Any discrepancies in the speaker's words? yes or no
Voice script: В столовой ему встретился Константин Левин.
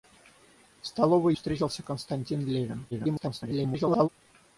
yes